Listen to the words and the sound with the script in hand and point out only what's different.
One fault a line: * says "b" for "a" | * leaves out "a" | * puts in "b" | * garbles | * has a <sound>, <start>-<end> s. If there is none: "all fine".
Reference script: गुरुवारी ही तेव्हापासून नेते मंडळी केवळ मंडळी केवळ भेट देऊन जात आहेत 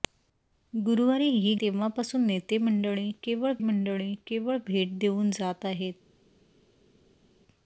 all fine